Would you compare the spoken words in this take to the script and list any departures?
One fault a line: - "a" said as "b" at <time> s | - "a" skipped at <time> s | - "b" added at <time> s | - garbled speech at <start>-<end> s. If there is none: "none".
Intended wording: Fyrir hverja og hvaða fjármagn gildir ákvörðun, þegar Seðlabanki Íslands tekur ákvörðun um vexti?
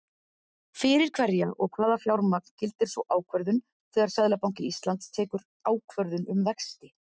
- "sú" added at 2.9 s